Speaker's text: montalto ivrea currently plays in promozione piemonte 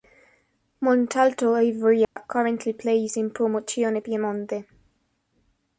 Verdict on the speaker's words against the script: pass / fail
pass